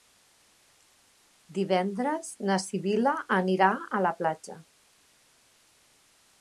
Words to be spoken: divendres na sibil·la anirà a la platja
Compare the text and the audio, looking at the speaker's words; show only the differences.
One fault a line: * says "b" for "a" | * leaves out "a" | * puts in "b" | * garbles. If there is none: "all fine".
all fine